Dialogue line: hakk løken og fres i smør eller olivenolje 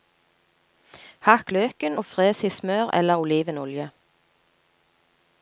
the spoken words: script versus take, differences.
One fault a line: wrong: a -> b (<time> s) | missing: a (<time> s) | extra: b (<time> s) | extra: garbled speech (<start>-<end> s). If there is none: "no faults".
no faults